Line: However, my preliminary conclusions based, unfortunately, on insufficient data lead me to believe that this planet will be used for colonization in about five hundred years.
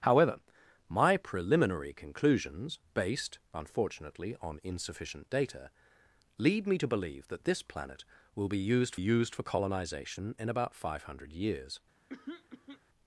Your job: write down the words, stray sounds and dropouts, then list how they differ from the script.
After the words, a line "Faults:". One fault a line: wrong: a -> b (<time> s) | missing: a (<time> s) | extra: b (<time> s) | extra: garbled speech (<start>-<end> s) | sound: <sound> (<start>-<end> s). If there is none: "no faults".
However, my preliminary conclusions based, unfortunately, on insufficient data lead me to believe that this planet will be used used for colonization in about five hundred years.
Faults:
extra: used (8.9 s)
sound: throat clearing (12.1-12.8 s)